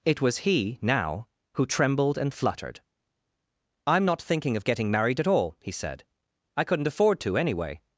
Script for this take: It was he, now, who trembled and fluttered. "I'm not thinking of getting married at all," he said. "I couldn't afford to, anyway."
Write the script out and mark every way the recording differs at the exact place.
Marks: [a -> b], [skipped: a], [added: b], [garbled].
It was he, now, who trembled and fluttered. "I'm not thinking of getting married at all," he said. "I couldn't afford to, anyway."